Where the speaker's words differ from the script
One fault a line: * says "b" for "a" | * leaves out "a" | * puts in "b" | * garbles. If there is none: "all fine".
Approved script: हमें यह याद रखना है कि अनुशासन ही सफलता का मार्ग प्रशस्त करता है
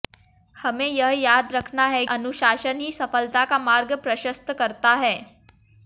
* leaves out "कि"